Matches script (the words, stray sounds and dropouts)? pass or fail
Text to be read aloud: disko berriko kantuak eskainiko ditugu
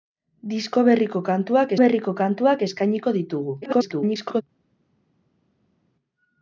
fail